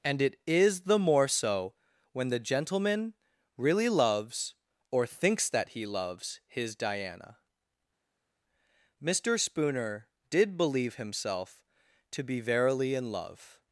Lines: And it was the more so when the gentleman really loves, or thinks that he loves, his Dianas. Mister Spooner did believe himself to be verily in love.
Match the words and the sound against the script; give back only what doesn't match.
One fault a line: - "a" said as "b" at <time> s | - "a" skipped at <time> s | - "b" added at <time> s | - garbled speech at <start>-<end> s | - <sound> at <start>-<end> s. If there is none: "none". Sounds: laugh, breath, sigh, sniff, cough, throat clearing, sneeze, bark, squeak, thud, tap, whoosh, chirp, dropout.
- "was" said as "is" at 0.5 s
- "Dianas" said as "Diana" at 6.8 s